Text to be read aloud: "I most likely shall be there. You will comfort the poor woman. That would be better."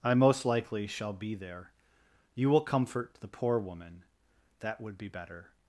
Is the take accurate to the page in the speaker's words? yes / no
yes